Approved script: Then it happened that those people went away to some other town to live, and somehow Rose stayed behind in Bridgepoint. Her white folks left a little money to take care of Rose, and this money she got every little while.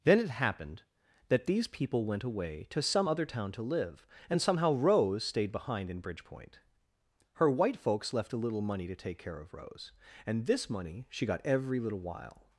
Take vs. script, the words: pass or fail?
fail